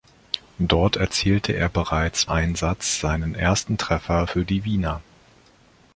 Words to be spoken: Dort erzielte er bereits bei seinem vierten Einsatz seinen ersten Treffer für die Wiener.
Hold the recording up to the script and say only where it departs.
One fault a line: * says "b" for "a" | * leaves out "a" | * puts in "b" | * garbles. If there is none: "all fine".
* leaves out "bei seinem vierten"